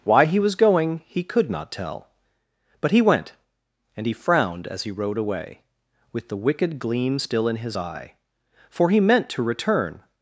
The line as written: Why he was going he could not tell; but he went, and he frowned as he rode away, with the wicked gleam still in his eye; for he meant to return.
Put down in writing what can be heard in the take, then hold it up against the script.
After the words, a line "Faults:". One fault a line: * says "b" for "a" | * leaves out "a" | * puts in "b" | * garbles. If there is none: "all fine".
Why he was going he could not tell; but he went, and he frowned as he rode away, with the wicked gleam still in his eye; for he meant to return.
Faults:
all fine